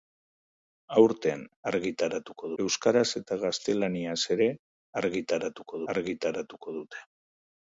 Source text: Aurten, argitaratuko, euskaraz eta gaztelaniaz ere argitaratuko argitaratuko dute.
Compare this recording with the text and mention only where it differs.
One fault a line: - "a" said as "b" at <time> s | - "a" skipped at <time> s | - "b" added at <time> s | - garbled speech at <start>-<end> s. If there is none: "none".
none